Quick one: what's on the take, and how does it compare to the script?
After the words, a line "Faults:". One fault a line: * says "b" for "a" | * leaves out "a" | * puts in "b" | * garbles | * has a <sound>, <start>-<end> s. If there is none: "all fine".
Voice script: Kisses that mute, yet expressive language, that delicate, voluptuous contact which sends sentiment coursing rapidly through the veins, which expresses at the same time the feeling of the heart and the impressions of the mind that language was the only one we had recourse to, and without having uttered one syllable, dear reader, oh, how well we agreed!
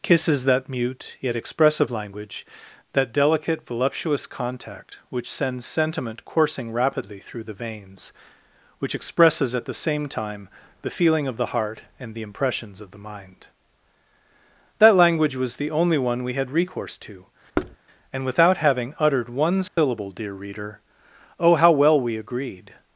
Kisses that mute, yet expressive language, that delicate, voluptuous contact which sends sentiment coursing rapidly through the veins, which expresses at the same time the feeling of the heart and the impressions of the mind that language was the only one we had recourse to, and without having uttered one syllable, dear reader, oh, how well we agreed!
Faults:
* has a thud, 17.5-17.8 s
* has a dropout, 19.7-19.8 s